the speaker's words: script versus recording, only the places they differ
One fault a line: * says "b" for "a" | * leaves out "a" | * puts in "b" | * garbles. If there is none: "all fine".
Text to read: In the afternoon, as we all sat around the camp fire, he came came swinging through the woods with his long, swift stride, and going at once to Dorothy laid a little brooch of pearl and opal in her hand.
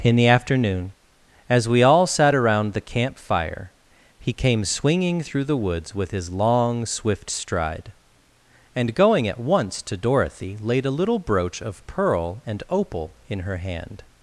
* leaves out "came"